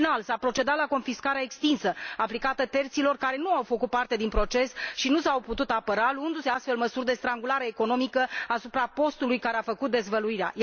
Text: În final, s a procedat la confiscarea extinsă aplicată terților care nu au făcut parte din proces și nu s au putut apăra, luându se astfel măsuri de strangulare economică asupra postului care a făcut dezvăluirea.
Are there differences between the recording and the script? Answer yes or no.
no